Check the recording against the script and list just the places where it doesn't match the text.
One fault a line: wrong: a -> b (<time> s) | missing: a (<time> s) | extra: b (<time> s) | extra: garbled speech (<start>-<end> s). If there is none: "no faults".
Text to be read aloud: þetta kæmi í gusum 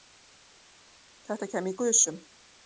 no faults